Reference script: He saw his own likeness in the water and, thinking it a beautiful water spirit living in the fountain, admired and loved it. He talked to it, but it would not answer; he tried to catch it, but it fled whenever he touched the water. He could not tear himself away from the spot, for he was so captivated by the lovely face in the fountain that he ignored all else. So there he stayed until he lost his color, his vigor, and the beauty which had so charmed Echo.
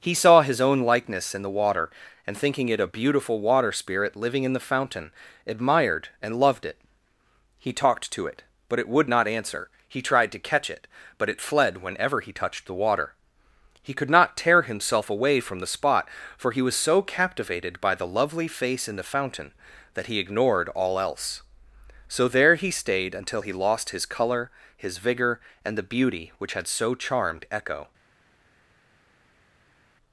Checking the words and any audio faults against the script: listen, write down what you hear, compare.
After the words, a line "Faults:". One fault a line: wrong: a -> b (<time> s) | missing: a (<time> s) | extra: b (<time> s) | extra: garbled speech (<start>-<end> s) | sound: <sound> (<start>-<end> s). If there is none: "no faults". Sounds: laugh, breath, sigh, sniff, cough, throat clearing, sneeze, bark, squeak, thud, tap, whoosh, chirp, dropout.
He saw his own likeness in the water and, thinking it a beautiful water spirit living in the fountain, admired and loved it. He talked to it, but it would not answer; he tried to catch it, but it fled whenever he touched the water. He could not tear himself away from the spot, for he was so captivated by the lovely face in the fountain that he ignored all else. So there he stayed until he lost his color, his vigor, and the beauty which had so charmed Echo.
Faults:
no faults